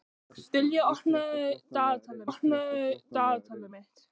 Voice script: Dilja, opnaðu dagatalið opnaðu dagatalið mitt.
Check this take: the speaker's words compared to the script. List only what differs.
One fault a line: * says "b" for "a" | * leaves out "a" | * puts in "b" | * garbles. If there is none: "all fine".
all fine